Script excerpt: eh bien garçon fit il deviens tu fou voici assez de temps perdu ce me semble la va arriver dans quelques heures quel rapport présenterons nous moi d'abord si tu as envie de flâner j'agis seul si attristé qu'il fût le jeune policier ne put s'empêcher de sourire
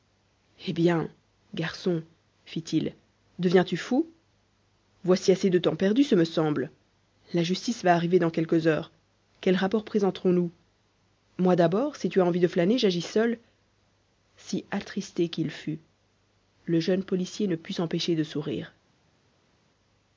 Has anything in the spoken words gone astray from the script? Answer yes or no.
yes